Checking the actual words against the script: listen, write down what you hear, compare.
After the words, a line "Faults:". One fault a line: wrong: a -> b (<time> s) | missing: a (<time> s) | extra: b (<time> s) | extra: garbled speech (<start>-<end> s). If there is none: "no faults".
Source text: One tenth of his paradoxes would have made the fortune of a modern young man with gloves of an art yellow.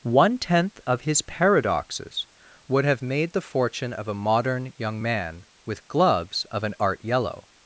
One tenth of his paradoxes would have made the fortune of a modern young man with gloves of an art yellow.
Faults:
no faults